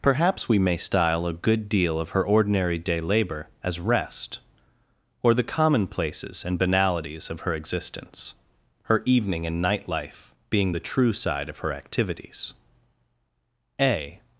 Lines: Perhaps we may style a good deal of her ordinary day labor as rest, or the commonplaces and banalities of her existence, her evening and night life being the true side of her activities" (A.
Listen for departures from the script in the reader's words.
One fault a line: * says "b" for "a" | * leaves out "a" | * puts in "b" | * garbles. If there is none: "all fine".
all fine